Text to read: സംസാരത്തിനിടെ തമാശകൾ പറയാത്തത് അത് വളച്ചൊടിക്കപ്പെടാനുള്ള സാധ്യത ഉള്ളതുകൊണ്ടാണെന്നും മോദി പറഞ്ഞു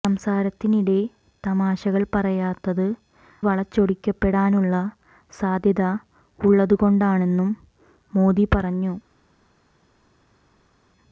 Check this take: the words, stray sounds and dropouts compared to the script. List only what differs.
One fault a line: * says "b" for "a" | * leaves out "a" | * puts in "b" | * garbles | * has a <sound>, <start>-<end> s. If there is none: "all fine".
* leaves out "അത്"